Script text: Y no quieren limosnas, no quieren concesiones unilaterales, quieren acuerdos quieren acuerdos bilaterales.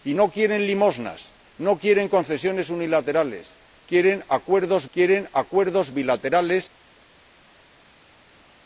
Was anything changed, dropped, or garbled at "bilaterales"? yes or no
no